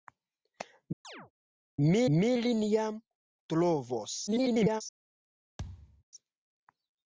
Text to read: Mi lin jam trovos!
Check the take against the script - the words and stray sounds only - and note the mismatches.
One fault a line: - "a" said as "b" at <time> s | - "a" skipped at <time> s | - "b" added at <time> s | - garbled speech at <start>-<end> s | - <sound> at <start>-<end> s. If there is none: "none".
- chirp at 1.0-1.3 s
- "mi" added at 2.1 s
- garbled speech at 4.3-4.8 s
- thud at 5.6-6.0 s